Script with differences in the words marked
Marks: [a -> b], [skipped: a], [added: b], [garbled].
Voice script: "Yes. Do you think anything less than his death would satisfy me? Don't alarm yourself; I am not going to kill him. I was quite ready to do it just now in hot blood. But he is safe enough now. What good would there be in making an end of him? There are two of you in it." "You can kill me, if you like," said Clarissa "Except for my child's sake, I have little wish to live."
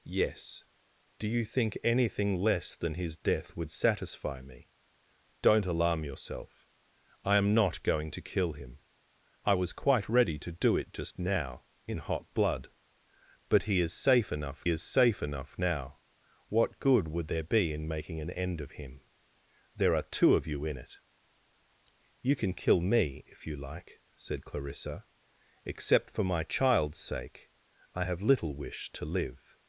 "Yes. Do you think anything less than his death would satisfy me? Don't alarm yourself; I am not going to kill him. I was quite ready to do it just now in hot blood. But he is safe enough [added: is safe enough] now. What good would there be in making an end of him? There are two of you in it." "You can kill me, if you like," said Clarissa "Except for my child's sake, I have little wish to live."